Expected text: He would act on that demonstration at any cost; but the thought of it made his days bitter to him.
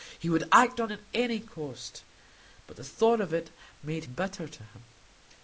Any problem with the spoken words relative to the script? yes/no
yes